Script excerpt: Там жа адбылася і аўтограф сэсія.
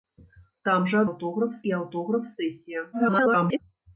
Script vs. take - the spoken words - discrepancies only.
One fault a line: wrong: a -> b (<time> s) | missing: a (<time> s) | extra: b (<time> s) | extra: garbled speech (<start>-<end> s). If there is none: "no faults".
wrong: адбылася -> аўтограф (1.1 s)
extra: garbled speech (2.9-3.6 s)